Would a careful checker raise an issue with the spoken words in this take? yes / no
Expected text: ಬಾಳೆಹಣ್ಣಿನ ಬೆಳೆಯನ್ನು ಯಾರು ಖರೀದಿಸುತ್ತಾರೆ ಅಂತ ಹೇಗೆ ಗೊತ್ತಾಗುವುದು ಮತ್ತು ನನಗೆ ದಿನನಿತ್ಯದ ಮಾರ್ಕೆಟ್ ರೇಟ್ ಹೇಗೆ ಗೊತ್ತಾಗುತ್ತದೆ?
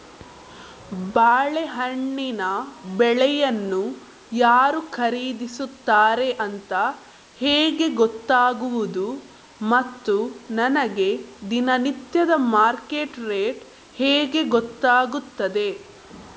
no